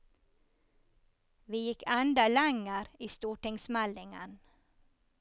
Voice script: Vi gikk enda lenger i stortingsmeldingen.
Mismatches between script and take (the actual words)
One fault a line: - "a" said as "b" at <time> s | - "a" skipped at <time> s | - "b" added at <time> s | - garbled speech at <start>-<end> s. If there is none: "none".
none